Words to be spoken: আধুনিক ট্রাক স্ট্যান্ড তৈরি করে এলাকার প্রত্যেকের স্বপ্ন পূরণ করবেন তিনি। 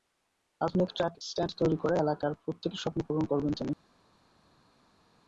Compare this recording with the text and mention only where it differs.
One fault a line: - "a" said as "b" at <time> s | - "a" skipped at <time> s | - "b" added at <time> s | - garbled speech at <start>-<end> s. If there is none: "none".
none